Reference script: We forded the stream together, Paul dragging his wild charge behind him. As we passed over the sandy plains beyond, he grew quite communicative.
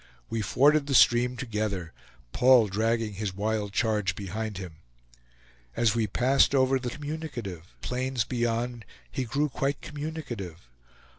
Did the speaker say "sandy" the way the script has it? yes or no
no